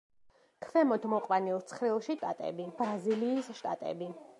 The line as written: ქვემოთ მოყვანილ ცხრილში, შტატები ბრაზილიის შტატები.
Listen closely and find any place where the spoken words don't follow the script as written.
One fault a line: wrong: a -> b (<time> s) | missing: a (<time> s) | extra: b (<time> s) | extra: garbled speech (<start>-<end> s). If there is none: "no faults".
no faults